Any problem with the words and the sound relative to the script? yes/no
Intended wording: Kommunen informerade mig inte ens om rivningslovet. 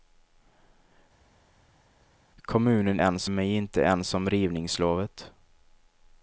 yes